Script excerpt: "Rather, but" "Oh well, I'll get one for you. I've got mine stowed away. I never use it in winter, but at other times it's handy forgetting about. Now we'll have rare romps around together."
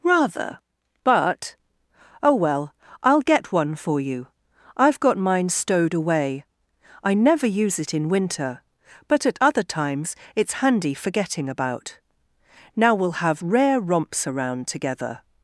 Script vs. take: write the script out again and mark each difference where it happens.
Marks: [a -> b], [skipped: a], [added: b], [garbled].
"Rather, but" "Oh well, I'll get one for you. I've got mine stowed away. I never use it in winter, but at other times it's handy forgetting about. Now we'll have rare romps around together."